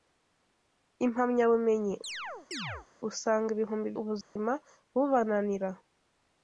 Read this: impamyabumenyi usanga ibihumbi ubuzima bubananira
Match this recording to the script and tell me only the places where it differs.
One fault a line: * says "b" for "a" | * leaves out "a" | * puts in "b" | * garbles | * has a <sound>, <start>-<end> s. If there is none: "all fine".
* has a chirp, 2.0-2.9 s
* has a dropout, 4.2-4.4 s